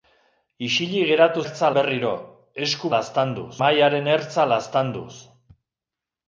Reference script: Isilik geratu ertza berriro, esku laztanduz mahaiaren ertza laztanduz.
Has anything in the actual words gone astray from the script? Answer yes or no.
no